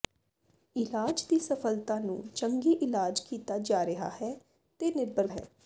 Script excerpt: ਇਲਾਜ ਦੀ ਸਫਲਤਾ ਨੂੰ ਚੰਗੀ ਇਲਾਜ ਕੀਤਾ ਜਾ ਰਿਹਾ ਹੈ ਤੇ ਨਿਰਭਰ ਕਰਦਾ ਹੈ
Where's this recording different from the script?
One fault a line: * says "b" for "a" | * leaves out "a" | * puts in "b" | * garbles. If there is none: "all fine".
* leaves out "ਕਰਦਾ"